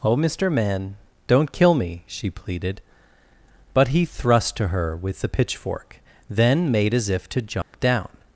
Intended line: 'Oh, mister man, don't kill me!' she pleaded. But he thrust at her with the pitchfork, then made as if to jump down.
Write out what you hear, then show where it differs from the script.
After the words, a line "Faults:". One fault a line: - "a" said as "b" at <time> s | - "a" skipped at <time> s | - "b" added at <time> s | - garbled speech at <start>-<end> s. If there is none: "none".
'Oh, mister man, don't kill me!' she pleaded. But he thrust to her with the pitchfork, then made as if to jump down.
Faults:
- "at" said as "to" at 4.6 s